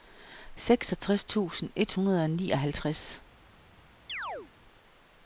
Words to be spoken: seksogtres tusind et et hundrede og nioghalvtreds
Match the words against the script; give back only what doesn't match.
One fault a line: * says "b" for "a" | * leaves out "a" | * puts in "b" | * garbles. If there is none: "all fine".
* leaves out "et"